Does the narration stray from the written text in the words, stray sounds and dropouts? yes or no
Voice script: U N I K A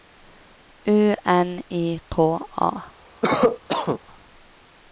yes